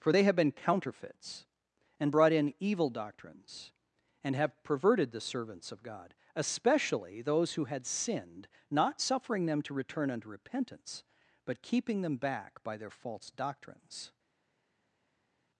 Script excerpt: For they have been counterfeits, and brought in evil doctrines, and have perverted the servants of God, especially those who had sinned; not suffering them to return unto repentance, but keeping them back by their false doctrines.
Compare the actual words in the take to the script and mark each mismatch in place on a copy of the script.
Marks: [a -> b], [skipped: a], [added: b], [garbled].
For they have been counterfeits, and brought in evil doctrines, and have perverted the servants of God, especially those who had sinned; not suffering them to return unto repentance, but keeping them back by their false doctrines.